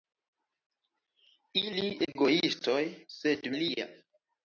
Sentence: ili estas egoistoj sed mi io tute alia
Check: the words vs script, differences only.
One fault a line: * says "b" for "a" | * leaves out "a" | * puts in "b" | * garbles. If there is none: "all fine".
* leaves out "estas"
* leaves out "mi io tute"